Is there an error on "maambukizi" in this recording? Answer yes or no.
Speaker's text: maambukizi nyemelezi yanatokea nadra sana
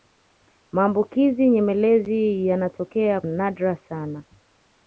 no